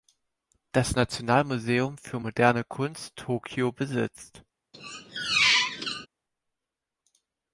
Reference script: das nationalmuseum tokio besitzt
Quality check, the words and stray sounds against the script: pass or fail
fail